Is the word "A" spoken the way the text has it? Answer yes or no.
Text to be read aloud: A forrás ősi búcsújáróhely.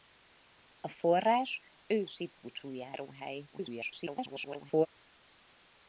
yes